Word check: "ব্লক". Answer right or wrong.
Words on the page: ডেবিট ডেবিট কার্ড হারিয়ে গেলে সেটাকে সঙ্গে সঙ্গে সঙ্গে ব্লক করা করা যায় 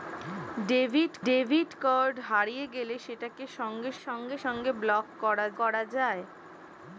right